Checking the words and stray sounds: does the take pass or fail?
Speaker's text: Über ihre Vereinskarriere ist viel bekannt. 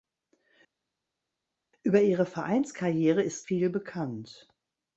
pass